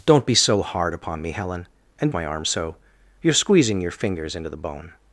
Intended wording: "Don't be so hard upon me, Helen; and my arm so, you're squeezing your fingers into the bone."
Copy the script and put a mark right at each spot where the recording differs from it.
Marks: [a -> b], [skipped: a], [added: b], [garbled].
"Don't be so hard upon me, Helen; and my arm so, you're squeezing your fingers into the bone."